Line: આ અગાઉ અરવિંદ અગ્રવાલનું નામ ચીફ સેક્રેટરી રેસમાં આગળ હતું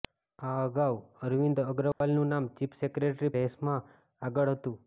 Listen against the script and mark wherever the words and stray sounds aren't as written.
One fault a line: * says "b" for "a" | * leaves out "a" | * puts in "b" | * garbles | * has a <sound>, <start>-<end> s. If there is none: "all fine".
* has a dropout, 1.9-2.0 s